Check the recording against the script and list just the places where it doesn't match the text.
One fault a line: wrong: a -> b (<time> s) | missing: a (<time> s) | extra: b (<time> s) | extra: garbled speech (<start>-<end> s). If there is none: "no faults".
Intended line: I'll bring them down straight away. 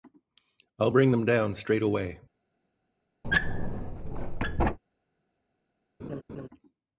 no faults